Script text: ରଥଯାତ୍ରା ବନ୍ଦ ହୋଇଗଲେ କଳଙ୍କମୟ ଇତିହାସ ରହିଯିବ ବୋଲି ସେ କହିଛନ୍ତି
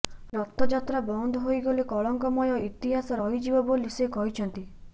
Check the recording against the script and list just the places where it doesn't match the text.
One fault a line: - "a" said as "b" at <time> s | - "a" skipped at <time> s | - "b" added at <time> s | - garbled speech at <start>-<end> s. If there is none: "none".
none